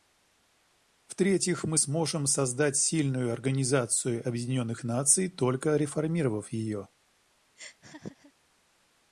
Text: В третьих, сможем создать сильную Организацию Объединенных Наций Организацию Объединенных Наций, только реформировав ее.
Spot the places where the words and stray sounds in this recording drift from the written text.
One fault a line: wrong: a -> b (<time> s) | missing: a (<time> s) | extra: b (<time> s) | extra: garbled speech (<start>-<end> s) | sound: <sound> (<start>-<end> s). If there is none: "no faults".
extra: мы (1.6 s)
missing: Организацию Объединенных Наций (5.3 s)
sound: laugh (7.6-8.3 s)